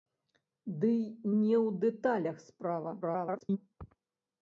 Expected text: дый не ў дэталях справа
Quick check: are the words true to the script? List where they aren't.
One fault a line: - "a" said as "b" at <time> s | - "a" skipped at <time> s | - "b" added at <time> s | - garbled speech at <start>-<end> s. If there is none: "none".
- garbled speech at 3.0-3.6 s